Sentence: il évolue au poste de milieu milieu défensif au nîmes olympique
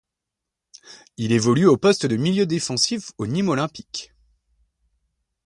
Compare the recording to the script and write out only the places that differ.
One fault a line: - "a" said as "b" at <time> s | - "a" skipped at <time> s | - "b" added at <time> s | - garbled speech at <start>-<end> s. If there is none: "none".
- "milieu" skipped at 2.5 s